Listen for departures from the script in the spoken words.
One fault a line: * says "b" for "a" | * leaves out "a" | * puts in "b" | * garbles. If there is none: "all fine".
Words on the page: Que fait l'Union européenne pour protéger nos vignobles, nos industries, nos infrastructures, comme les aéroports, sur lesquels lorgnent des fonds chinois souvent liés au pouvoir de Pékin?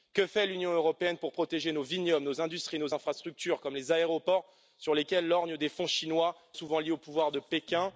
all fine